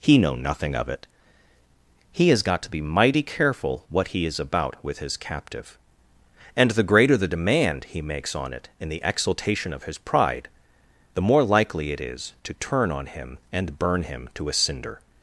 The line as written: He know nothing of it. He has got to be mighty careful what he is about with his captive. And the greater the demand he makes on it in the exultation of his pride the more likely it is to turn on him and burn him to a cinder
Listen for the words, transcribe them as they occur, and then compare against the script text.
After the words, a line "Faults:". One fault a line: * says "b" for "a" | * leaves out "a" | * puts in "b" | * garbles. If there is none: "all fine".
He know nothing of it. He has got to be mighty careful what he is about with his captive. And the greater the demand he makes on it in the exultation of his pride the more likely it is to turn on him and burn him to a cinder
Faults:
all fine